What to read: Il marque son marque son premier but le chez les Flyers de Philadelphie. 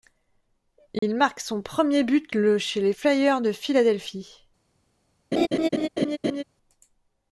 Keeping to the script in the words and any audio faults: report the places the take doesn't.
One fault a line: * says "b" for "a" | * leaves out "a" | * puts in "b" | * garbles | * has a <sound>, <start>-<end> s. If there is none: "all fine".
* has a dropout, 1.0-1.0 s
* leaves out "marque son"
* has a laugh, 5.3-6.4 s